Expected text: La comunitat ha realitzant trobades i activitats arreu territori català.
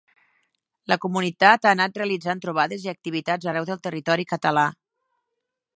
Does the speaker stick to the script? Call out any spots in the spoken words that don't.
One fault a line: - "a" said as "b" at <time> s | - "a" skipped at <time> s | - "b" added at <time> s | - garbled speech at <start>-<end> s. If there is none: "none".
- "anat" added at 1.8 s
- "del" added at 3.7 s